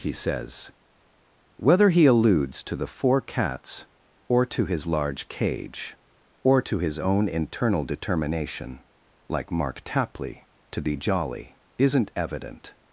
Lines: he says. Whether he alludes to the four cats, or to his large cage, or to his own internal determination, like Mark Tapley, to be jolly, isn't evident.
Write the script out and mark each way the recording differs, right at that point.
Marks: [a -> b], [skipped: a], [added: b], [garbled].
he says. Whether he alludes to the four cats, or to his large cage, or to his own internal determination, like Mark Tapley, to be jolly, isn't evident.